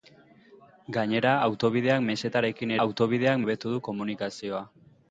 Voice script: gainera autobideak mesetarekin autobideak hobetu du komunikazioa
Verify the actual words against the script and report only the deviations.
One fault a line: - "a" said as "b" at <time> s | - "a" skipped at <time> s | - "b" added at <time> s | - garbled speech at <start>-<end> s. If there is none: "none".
none